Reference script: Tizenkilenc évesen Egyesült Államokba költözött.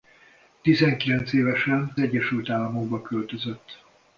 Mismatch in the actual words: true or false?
false